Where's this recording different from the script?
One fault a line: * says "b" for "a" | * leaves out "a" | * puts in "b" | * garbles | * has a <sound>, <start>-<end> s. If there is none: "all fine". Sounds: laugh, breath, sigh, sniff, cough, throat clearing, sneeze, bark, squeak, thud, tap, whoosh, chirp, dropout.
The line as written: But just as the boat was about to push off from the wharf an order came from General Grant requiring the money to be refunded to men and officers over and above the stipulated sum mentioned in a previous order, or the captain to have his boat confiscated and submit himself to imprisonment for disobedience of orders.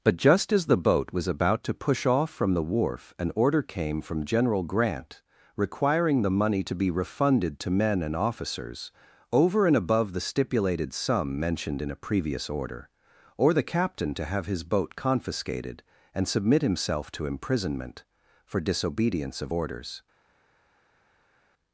all fine